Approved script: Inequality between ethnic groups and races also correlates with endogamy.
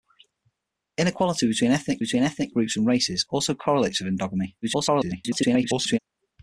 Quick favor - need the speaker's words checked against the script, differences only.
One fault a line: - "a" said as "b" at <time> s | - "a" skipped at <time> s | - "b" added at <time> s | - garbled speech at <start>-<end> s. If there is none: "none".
- "between ethnic" added at 2.0 s
- garbled speech at 4.6-6.0 s